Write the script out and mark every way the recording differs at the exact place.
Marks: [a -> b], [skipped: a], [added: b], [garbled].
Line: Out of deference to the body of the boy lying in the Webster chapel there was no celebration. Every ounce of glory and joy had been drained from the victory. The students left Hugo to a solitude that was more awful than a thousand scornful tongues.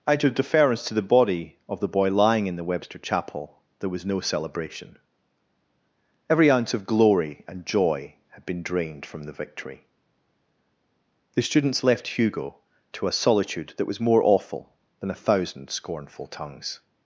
Out of deference to the body of the boy lying in the Webster chapel there was no celebration. Every ounce of glory and joy had been drained from the victory. The students left Hugo to a solitude that was more awful than a thousand scornful tongues.